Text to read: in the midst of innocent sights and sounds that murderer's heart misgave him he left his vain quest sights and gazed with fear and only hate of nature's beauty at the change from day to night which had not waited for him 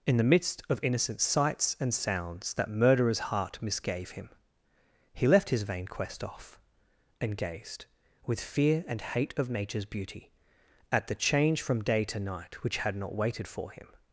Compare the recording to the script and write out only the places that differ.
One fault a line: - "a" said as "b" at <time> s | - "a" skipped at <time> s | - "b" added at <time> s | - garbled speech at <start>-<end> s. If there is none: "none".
- "sights" said as "off" at 6.2 s
- "only" skipped at 9.0 s